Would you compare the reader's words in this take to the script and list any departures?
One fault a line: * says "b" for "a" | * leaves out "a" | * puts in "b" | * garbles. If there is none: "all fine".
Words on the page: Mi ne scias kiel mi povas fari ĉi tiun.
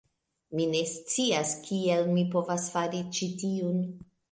all fine